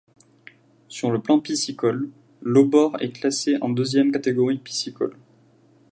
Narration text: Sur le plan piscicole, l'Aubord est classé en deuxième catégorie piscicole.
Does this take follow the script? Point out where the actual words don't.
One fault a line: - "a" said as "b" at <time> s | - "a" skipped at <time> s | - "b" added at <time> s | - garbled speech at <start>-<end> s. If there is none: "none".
none